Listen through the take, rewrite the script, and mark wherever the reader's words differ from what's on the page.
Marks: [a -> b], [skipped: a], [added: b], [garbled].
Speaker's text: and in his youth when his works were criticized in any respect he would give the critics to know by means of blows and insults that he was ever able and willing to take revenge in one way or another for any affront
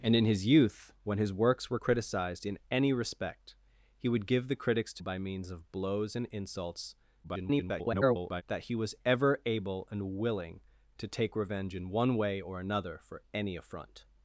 and in his youth when his works were criticized in any respect he would give the critics to [skipped: know] by means of blows and insults [garbled] that he was ever able and willing to take revenge in one way or another for any affront